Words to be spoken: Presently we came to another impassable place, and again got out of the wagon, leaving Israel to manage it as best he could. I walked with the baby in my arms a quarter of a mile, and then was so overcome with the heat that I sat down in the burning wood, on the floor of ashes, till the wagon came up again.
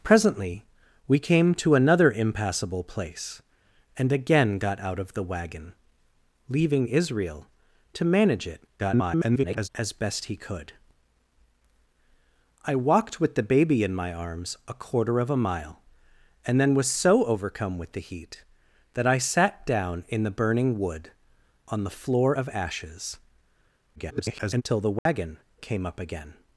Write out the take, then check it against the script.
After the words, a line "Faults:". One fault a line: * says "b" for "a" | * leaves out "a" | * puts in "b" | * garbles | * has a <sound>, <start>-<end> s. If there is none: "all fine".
Presently we came to another impassable place, and again got out of the wagon, leaving Israel to manage it [garbled] as best he could. I walked with the baby in my arms a quarter of a mile, and then was so overcome with the heat that I sat down in the burning wood, on the floor of ashes, [garbled] till the wagon came up again.
Faults:
* garbles
* garbles
* has a dropout, 25.0-25.1 s